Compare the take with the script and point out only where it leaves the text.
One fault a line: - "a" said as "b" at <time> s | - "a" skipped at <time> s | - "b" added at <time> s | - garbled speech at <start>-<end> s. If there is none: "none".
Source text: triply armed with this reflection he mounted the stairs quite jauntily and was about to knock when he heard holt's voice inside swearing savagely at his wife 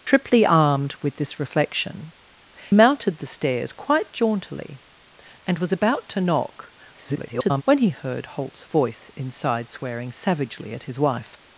- "he" skipped at 2.1 s
- garbled speech at 6.9-7.6 s